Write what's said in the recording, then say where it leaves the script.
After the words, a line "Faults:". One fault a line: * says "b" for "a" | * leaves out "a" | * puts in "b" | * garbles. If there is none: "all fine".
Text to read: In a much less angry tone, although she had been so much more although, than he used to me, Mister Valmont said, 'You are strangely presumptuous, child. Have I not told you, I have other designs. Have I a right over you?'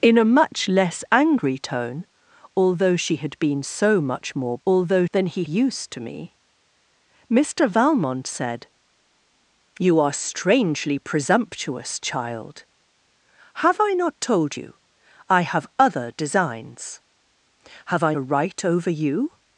In a much less angry tone, although she had been so much more although, than he used to me, Mister Valmont said, 'You are strangely presumptuous, child. Have I not told you, I have other designs. Have I a right over you?'
Faults:
all fine